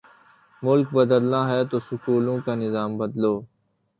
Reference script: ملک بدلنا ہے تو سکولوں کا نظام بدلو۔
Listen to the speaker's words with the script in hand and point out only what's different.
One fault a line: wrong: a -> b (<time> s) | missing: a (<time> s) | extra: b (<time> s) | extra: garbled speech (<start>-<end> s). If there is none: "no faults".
no faults